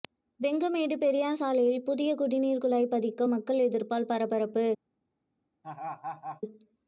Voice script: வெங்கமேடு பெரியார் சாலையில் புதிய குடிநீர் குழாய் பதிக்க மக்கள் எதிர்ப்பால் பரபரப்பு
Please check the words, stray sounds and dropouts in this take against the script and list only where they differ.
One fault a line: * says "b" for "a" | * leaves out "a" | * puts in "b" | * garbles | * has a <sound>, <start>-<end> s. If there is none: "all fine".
* has a laugh, 5.6-6.4 s